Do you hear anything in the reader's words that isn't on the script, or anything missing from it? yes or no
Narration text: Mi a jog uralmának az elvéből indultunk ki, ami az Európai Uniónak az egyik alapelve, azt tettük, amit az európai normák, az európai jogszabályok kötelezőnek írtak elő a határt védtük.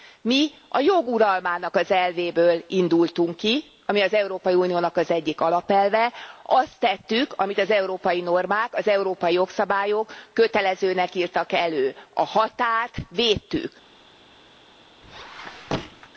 no